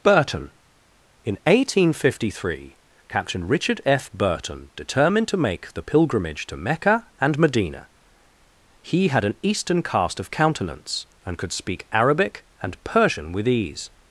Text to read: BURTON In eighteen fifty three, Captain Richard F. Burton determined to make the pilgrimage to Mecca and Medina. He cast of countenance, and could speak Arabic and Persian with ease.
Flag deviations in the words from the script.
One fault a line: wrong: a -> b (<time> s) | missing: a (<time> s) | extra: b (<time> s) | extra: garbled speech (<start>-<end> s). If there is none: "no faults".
extra: had an Eastern (9.1 s)